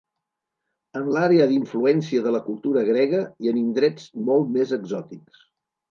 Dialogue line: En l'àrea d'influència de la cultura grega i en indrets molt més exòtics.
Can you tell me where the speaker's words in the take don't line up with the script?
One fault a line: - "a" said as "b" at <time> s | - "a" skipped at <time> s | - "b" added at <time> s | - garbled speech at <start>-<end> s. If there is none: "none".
none